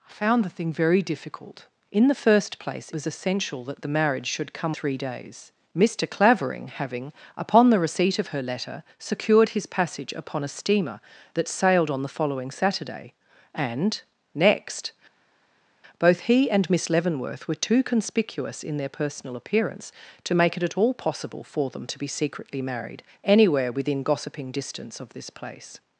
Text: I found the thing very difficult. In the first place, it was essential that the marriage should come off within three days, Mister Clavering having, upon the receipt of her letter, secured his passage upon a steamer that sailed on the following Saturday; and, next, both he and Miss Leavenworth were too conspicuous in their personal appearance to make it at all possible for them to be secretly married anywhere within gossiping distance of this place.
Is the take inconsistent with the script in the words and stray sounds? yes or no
yes